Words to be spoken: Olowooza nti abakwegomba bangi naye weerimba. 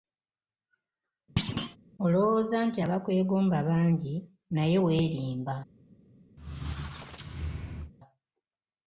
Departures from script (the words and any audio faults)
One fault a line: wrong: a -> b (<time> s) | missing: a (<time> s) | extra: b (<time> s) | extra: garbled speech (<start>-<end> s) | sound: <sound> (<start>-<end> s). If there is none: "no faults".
sound: thud (1.4-1.8 s)
sound: squeak (6.4-7.9 s)